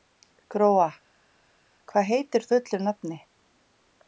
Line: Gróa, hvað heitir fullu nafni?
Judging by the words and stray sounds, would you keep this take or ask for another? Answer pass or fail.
pass